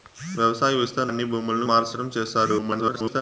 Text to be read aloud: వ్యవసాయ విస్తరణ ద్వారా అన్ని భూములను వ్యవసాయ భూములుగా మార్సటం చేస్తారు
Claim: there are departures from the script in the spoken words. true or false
true